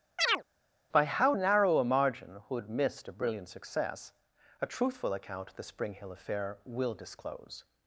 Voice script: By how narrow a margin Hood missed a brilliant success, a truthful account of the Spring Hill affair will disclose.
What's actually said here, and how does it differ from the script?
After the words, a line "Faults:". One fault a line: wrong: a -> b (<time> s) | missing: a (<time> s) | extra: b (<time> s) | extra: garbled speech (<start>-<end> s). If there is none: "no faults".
By how narrow a margin Hood missed a brilliant success, a truthful account of the Spring Hill affair will disclose.
Faults:
no faults